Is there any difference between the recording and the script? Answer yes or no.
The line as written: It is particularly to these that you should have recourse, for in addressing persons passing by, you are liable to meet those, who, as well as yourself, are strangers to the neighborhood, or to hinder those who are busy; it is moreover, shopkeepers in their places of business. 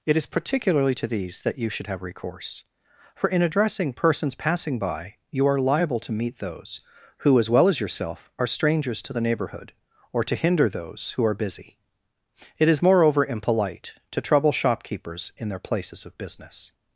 yes